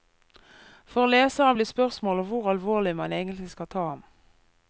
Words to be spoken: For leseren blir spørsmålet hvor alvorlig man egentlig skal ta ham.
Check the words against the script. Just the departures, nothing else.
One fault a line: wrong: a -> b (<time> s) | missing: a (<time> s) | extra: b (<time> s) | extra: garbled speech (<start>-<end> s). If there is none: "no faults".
no faults